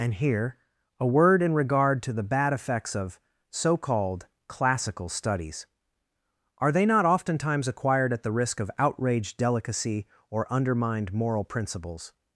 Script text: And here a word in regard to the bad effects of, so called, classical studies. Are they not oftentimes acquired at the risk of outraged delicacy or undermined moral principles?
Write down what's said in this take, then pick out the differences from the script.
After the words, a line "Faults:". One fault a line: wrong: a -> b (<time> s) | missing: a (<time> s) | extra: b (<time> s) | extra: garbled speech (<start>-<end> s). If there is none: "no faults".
And here a word in regard to the bad effects of, so called, classical studies. Are they not oftentimes acquired at the risk of outraged delicacy or undermined moral principles?
Faults:
no faults